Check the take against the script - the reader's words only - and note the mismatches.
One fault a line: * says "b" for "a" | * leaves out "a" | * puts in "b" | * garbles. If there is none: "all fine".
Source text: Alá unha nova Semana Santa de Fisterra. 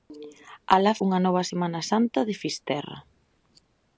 all fine